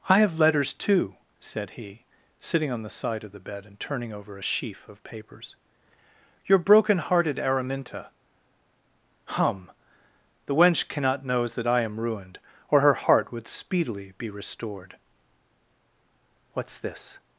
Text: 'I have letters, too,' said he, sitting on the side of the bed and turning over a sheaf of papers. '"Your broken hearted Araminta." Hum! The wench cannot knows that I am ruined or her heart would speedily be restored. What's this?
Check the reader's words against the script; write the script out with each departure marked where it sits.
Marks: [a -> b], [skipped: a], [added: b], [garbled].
'I have letters, too,' said he, sitting on the side of the bed and turning over a sheaf of papers. '"Your broken hearted Araminta." Hum! The wench cannot knows that I am ruined or her heart would speedily be restored. What's this?